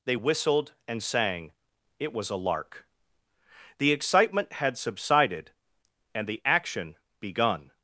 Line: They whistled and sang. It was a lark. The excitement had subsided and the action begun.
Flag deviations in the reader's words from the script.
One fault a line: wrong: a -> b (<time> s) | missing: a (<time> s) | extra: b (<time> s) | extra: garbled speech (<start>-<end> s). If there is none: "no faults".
no faults